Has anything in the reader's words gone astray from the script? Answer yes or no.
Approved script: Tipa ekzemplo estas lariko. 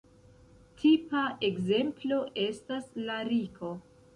no